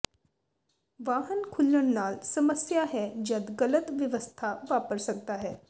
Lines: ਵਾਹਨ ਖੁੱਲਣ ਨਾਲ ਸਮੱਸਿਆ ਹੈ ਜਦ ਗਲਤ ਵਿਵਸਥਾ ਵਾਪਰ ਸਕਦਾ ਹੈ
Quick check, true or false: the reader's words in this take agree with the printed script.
true